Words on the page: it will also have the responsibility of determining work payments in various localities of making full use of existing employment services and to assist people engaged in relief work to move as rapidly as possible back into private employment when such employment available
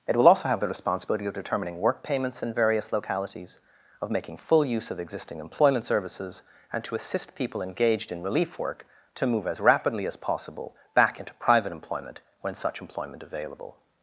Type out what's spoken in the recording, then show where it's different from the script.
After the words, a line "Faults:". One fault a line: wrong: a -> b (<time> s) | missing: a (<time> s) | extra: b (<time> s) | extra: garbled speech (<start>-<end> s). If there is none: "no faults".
it will also have the responsibility of determining work payments in various localities of making full use of existing employment services and to assist people engaged in relief work to move as rapidly as possible back into private employment when such employment available
Faults:
no faults